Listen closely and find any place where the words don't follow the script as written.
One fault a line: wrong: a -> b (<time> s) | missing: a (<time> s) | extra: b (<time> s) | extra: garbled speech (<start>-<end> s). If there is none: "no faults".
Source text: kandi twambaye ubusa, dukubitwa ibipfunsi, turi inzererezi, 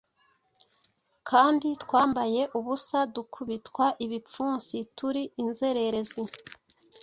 no faults